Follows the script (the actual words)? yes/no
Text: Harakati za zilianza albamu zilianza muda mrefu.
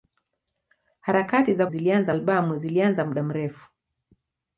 yes